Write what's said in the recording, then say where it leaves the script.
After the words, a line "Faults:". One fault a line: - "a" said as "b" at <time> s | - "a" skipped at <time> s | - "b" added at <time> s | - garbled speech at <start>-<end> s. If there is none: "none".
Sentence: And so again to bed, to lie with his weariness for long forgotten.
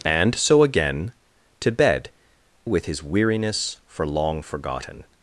And so again to bed, with his weariness for long forgotten.
Faults:
- "to lie" skipped at 2.1 s